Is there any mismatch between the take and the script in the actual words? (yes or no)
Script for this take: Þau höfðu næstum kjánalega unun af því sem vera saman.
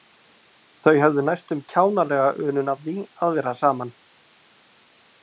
yes